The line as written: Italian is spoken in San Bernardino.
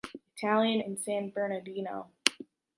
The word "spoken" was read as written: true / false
false